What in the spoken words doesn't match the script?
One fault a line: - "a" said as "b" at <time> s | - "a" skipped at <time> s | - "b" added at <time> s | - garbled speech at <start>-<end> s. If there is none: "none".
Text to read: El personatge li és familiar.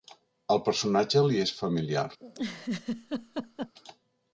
none